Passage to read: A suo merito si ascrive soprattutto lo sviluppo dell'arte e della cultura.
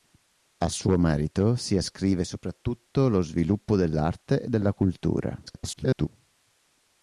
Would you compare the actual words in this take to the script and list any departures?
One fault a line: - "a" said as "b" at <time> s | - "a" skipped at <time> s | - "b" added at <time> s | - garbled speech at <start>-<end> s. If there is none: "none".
- garbled speech at 5.5-6.1 s